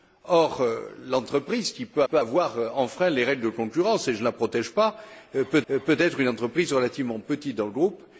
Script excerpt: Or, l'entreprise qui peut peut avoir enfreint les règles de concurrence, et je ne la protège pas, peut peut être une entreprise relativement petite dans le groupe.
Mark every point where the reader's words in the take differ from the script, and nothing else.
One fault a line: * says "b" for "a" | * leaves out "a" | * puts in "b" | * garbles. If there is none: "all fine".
all fine